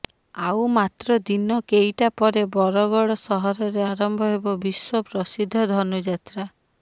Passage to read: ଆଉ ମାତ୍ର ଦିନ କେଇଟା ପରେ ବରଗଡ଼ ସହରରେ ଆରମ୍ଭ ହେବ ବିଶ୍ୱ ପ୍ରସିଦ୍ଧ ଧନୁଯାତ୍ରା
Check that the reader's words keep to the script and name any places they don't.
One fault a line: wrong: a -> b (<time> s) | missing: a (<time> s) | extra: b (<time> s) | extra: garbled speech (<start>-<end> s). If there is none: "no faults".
no faults